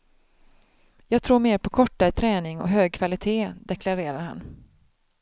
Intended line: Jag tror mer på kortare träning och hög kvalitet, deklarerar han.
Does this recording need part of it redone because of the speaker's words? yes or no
no